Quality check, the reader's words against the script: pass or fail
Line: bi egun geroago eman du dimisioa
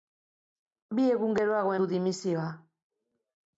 fail